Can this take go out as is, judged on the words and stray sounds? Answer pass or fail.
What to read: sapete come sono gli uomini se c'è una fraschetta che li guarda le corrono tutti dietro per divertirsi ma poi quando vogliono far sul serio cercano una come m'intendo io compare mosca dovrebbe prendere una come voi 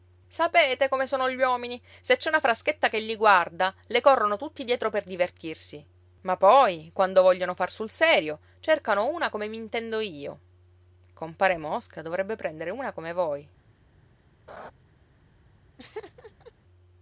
fail